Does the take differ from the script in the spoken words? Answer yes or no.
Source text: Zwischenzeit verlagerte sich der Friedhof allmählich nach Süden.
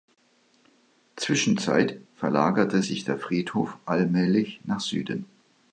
no